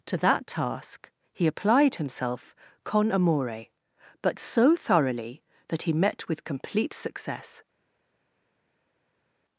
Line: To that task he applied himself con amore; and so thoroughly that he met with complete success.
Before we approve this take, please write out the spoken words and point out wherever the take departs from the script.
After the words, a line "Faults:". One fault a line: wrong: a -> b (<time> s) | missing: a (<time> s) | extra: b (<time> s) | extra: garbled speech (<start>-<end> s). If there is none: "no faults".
To that task he applied himself con amore; but so thoroughly that he met with complete success.
Faults:
wrong: and -> but (4.2 s)